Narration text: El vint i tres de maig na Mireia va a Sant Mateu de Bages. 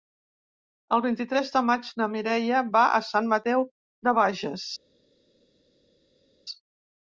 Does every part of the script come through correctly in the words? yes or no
yes